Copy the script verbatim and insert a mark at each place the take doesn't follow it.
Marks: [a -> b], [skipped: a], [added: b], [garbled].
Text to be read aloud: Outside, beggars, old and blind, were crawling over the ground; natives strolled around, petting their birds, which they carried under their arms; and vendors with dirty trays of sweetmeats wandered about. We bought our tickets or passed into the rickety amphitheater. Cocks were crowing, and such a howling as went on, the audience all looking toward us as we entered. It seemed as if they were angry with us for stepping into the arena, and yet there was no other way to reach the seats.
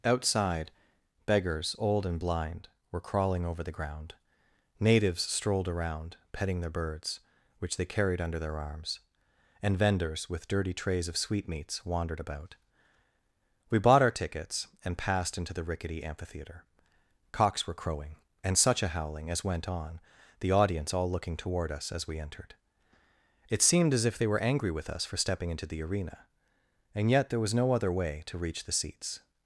Outside, beggars, old and blind, were crawling over the ground; natives strolled around, petting their birds, which they carried under their arms; and vendors with dirty trays of sweetmeats wandered about. We bought our tickets [or -> and] passed into the rickety amphitheater. Cocks were crowing, and such a howling as went on, the audience all looking toward us as we entered. It seemed as if they were angry with us for stepping into the arena, and yet there was no other way to reach the seats.